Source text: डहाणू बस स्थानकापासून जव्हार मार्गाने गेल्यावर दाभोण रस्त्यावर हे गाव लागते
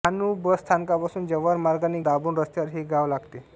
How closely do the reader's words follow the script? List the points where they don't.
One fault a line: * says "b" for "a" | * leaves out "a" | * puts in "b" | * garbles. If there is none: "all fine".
* leaves out "गेल्यावर"